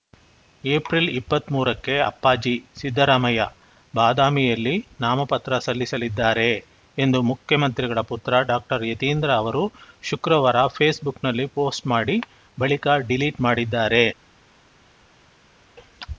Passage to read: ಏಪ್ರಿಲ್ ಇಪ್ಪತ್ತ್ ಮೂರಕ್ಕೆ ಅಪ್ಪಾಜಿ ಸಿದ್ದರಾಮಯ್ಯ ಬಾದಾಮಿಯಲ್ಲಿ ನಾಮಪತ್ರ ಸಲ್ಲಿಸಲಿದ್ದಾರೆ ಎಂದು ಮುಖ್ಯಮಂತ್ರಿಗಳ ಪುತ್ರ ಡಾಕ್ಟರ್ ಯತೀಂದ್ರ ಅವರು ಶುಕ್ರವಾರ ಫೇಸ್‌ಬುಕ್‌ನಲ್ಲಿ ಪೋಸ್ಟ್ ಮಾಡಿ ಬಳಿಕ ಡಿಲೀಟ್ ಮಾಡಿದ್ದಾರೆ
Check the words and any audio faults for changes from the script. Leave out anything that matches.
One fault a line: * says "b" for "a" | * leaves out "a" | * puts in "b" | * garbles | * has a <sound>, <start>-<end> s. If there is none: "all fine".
all fine